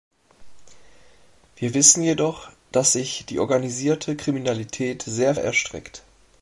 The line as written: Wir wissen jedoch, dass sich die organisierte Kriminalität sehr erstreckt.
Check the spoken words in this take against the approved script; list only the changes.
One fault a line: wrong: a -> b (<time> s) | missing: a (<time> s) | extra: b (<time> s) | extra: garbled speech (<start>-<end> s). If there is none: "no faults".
no faults